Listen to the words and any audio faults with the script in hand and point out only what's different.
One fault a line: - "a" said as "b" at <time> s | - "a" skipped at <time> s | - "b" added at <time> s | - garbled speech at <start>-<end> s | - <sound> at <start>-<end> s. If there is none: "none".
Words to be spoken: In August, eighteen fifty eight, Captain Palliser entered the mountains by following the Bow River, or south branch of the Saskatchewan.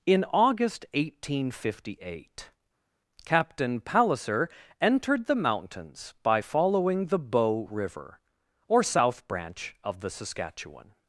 none